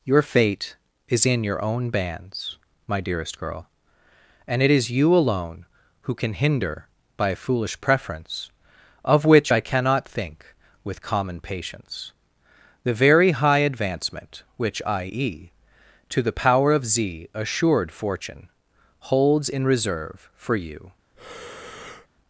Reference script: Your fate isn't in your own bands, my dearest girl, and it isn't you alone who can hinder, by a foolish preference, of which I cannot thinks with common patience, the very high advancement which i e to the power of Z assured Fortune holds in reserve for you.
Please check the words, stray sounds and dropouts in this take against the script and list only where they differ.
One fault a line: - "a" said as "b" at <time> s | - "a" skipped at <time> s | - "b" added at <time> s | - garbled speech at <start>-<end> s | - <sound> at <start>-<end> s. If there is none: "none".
- "isn't" said as "is" at 1.1 s
- "isn't" said as "is" at 4.7 s
- "thinks" said as "think" at 10.1 s
- breath at 21.1-22.1 s